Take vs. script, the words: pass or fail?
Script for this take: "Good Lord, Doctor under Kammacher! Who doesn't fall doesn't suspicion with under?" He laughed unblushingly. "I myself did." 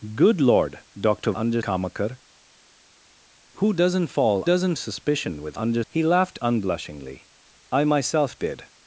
pass